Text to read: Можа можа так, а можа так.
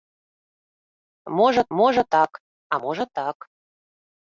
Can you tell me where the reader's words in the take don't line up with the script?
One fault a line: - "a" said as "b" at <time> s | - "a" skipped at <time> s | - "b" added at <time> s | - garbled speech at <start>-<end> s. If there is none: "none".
none